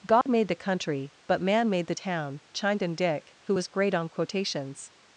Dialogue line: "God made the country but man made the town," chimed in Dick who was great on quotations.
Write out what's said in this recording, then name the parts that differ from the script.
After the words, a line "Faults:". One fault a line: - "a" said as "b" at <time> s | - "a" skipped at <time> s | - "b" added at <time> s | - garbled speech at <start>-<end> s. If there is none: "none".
"God made the country but man made the town," chimed in Dick who was great on quotations.
Faults:
none